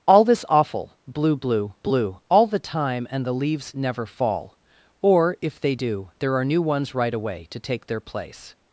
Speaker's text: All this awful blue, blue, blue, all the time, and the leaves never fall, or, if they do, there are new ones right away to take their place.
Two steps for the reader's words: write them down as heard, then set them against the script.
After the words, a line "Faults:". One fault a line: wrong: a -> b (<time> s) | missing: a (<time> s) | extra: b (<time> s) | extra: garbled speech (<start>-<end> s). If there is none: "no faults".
All this awful blue, blue, blue, all the time, and the leaves never fall, or, if they do, there are new ones right away to take their place.
Faults:
no faults